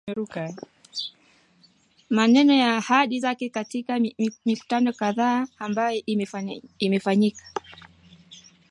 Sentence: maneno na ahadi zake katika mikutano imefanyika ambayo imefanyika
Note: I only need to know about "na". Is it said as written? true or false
true